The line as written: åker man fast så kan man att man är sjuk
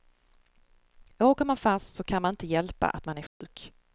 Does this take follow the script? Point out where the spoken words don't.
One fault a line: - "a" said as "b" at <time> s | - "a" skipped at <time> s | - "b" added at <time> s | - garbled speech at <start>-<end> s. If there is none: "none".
- "inte hjälpa" added at 2.3 s